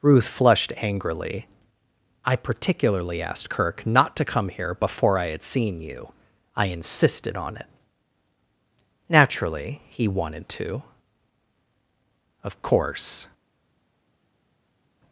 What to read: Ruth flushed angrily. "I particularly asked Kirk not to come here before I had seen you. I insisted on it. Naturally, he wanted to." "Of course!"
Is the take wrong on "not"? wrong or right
right